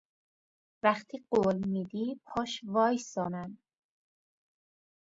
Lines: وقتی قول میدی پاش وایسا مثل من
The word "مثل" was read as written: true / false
false